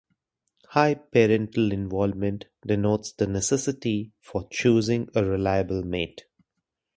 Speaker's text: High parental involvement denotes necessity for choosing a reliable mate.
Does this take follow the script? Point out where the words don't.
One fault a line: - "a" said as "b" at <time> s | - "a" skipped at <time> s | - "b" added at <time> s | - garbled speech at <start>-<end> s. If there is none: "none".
- "the" added at 3.1 s